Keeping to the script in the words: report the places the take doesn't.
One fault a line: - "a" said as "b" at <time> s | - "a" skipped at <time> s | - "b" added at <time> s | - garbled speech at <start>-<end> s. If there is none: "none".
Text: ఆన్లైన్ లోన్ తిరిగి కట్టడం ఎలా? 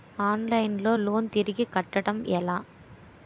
- "లో" added at 0.8 s